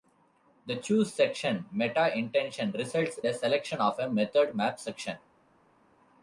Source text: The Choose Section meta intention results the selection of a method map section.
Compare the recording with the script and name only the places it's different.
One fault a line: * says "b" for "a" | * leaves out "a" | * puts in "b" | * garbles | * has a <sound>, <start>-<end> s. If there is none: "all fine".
all fine